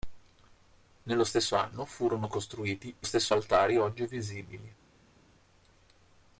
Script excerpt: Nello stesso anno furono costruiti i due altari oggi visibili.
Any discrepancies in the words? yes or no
yes